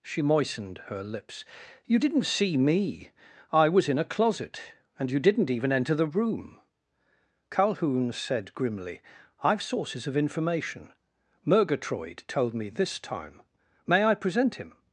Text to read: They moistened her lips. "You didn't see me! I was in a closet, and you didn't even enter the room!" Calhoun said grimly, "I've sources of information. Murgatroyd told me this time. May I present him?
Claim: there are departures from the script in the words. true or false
true